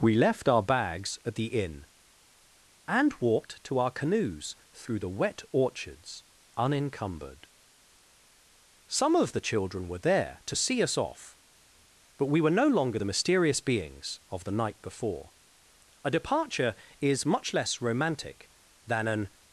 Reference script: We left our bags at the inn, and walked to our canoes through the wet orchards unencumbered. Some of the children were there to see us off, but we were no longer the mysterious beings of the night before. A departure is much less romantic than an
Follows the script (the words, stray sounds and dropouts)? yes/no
yes